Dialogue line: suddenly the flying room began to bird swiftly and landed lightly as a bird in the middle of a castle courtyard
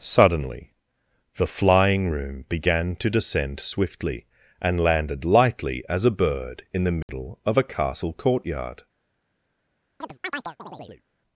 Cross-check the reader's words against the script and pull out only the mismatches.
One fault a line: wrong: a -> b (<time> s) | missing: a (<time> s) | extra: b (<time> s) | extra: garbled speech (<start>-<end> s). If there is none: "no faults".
wrong: bird -> descend (3.1 s)